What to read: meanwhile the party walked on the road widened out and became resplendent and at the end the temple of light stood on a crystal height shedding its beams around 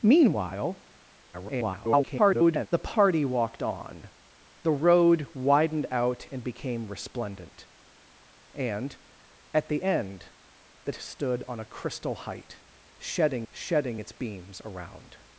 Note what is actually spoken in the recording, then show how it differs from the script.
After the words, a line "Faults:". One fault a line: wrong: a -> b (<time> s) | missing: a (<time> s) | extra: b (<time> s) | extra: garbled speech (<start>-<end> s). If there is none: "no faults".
meanwhile [garbled] the party walked on the road widened out and became resplendent and at the end the stood on a crystal height shedding shedding its beams around
Faults:
extra: garbled speech (1.3-2.7 s)
missing: temple of light (10.9 s)
extra: shedding (13.5 s)